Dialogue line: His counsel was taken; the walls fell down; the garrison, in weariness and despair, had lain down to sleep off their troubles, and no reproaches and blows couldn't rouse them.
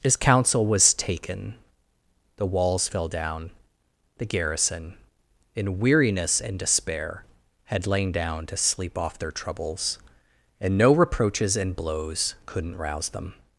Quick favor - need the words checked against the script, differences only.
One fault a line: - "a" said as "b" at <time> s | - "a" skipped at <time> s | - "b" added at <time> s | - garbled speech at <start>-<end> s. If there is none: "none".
none